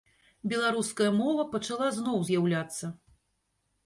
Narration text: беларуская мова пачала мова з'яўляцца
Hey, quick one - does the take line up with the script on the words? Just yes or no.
no